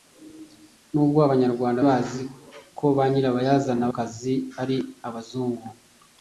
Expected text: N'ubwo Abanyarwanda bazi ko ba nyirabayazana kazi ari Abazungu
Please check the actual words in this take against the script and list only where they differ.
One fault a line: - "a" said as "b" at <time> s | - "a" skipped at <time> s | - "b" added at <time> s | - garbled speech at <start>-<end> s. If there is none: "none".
none